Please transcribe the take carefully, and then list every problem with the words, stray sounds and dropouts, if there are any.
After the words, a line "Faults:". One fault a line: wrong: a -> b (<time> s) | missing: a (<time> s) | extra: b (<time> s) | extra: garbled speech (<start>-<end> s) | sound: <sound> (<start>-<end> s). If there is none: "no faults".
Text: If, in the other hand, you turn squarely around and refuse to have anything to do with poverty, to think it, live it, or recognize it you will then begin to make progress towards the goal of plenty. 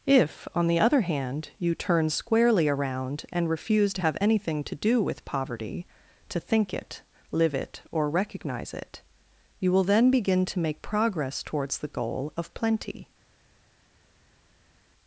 If, on the other hand, you turn squarely around and refuse to have anything to do with poverty, to think it, live it, or recognize it you will then begin to make progress towards the goal of plenty.
Faults:
wrong: in -> on (0.6 s)